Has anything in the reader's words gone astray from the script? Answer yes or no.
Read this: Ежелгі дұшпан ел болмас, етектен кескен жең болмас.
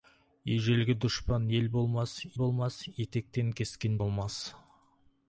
yes